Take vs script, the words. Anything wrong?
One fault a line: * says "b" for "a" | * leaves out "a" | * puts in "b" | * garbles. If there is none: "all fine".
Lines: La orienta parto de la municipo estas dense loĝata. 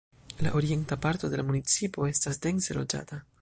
all fine